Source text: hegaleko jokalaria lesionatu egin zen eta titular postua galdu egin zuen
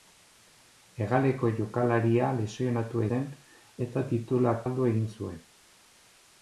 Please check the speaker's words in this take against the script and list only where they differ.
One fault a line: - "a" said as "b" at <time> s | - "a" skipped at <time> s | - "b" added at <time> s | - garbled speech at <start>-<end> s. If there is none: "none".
- "egin" skipped at 3.0 s
- "postua" skipped at 4.6 s